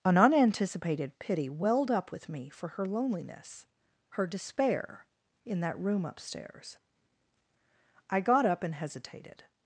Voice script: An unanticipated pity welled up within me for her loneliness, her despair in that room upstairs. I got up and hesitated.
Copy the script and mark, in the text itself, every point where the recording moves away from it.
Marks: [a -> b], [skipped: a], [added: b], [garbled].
An unanticipated pity welled up [within -> with] me for her loneliness, her despair in that room upstairs. I got up and hesitated.